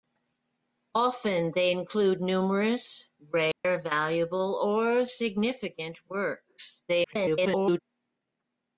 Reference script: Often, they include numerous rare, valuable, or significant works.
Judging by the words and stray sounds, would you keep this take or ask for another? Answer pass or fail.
fail